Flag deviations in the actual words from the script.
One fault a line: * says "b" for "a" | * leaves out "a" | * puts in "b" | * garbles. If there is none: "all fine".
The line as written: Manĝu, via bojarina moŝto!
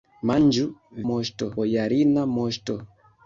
* says "moŝto" for "via"